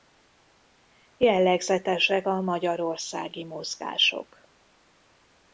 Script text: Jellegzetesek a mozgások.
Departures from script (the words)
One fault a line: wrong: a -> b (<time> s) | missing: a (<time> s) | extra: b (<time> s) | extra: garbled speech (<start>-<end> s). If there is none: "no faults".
extra: magyarországi (2.4 s)